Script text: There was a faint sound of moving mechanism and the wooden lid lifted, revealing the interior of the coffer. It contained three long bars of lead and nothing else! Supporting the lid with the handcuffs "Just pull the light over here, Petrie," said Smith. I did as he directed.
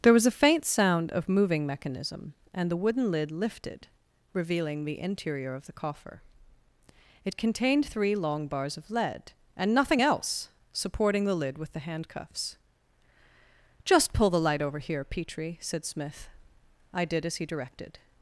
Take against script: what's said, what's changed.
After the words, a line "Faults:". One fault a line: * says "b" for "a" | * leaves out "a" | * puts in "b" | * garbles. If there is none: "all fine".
There was a faint sound of moving mechanism and the wooden lid lifted, revealing the interior of the coffer. It contained three long bars of lead and nothing else! Supporting the lid with the handcuffs "Just pull the light over here, Petrie," said Smith. I did as he directed.
Faults:
all fine